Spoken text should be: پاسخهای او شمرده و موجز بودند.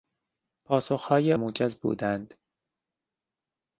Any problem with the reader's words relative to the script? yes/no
yes